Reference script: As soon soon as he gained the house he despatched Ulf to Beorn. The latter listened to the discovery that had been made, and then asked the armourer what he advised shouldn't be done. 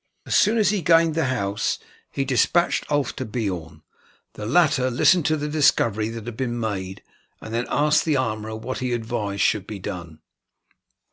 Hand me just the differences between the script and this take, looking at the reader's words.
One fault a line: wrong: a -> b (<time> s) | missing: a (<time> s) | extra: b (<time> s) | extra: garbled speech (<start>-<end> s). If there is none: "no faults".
missing: soon (0.6 s)
wrong: shouldn't -> should (9.4 s)